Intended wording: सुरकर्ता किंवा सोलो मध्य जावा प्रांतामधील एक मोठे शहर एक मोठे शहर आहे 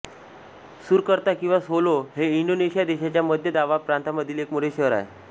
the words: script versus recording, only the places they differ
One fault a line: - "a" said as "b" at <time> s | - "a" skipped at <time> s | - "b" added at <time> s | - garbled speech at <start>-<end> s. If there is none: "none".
- "हे इंडोनेशिया देशाच्या" added at 2.1 s
- "एक मोठे शहर" skipped at 4.9 s